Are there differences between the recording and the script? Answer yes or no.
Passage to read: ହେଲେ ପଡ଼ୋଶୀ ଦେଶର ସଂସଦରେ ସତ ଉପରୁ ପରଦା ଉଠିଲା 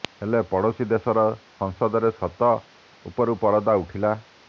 no